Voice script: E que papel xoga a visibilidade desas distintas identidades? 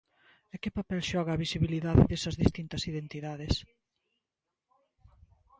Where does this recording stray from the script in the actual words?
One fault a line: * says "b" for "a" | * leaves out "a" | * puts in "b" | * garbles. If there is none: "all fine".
all fine